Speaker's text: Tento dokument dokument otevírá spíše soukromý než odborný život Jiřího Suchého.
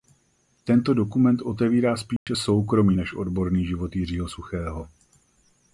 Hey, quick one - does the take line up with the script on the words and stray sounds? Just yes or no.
no